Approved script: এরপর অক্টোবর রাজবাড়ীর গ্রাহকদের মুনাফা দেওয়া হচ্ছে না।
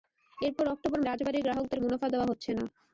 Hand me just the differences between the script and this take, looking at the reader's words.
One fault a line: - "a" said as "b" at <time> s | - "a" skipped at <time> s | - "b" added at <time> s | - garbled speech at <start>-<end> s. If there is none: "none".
none